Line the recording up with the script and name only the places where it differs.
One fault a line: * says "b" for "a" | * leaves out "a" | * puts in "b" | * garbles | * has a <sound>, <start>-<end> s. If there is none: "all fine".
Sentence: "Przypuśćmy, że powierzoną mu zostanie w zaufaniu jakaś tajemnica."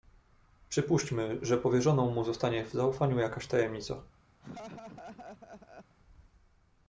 * has a laugh, 4.4-6.0 s